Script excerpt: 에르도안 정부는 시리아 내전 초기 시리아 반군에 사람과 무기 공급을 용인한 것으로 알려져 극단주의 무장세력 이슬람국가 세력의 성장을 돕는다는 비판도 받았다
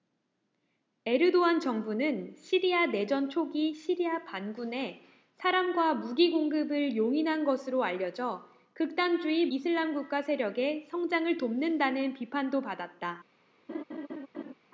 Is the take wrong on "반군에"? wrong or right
right